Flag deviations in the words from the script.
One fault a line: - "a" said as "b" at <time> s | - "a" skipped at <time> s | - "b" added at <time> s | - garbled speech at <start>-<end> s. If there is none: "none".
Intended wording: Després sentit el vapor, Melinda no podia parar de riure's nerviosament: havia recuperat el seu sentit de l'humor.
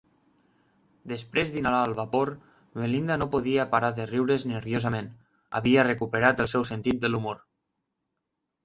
- "sentit" said as "d'inhalar" at 1.6 s